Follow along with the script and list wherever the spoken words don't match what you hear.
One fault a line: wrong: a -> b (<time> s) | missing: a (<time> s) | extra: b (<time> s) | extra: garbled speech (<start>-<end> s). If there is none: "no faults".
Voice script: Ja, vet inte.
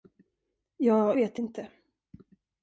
no faults